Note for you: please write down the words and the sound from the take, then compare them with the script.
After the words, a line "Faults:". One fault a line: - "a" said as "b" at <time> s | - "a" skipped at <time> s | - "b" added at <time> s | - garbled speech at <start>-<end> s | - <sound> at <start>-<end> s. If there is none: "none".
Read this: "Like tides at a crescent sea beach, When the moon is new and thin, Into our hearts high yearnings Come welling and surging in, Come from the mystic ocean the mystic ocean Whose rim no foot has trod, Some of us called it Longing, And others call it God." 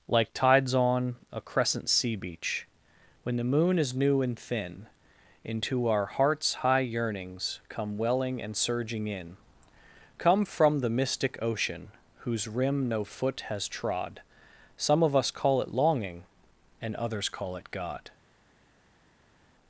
"Like tides on a crescent sea beach, When the moon is new and thin, Into our hearts high yearnings Come welling and surging in, Come from the mystic ocean Whose rim no foot has trod, Some of us call it Longing, And others call it God."
Faults:
- "at" said as "on" at 0.7 s
- "the mystic ocean" skipped at 11.9 s
- "called" said as "call" at 15.3 s